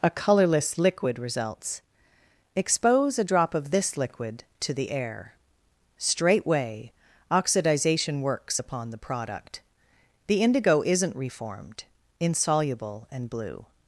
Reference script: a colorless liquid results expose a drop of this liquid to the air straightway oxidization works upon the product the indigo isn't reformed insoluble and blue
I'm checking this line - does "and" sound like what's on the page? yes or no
yes